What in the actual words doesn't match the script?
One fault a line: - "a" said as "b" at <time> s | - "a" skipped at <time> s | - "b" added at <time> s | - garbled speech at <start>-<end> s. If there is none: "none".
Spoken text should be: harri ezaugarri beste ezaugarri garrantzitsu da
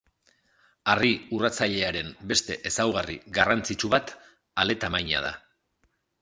- "ezaugarri" said as "urratzailearen" at 1.4 s
- "bat ale tamaina" added at 4.0 s